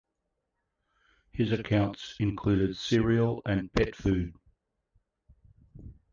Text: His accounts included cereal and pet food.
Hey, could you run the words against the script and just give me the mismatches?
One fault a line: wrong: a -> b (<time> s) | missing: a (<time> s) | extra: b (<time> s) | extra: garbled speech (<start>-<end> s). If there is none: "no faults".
no faults